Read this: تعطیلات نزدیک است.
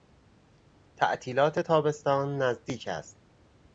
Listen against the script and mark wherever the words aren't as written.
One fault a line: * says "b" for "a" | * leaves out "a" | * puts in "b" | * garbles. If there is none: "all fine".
* puts in "تابستان"